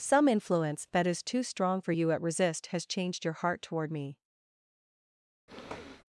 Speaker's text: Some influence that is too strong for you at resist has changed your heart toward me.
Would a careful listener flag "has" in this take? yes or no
no